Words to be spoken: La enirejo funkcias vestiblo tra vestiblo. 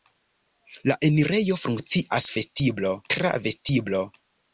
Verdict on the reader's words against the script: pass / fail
pass